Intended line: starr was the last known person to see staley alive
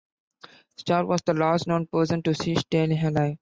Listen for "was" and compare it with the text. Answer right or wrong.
right